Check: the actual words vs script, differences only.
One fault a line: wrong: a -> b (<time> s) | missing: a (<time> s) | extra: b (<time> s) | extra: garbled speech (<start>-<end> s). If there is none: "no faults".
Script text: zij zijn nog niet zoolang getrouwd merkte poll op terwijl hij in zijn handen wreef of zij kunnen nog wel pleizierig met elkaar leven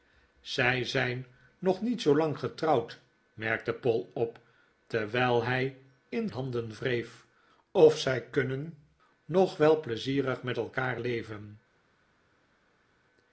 missing: zijn (6.3 s)